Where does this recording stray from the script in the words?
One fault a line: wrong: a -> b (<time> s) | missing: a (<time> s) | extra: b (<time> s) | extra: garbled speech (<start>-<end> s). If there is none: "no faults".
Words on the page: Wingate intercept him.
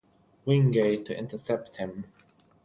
extra: to (1.0 s)